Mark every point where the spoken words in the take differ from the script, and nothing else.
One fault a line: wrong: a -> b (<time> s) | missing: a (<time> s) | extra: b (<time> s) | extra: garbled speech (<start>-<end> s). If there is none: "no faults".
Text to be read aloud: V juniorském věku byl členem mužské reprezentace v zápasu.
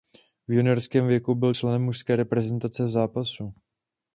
no faults